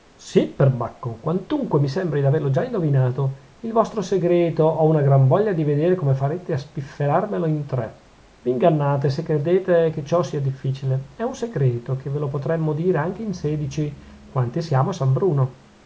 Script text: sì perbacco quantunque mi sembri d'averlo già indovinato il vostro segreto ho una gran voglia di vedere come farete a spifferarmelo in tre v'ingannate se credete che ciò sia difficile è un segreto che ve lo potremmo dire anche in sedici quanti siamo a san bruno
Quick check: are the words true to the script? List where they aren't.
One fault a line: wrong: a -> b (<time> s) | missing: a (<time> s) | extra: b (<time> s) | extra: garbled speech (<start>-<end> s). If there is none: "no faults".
no faults